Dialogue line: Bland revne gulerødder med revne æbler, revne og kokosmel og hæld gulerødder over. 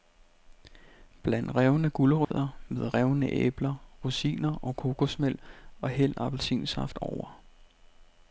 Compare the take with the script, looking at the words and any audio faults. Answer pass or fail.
fail